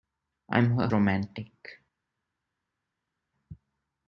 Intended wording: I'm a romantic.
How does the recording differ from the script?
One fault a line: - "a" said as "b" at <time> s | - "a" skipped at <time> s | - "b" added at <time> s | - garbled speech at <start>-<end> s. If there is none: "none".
none